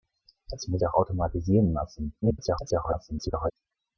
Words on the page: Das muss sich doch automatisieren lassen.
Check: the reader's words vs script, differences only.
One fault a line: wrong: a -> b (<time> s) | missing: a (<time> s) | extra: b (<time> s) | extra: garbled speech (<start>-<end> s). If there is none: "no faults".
missing: sich (0.8 s)
extra: garbled speech (2.2-3.5 s)